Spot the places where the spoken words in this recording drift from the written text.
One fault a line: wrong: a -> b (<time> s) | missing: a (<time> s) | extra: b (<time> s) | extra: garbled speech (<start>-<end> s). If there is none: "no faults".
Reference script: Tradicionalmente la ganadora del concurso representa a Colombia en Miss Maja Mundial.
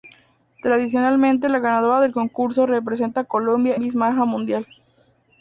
missing: en (3.8 s)